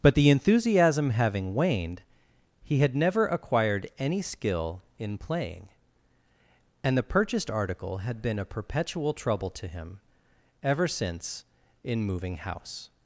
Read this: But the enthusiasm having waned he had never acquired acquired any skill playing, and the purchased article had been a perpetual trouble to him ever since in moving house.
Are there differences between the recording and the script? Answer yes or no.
yes